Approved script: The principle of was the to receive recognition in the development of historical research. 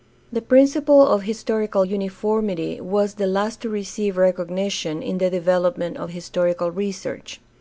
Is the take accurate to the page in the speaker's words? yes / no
no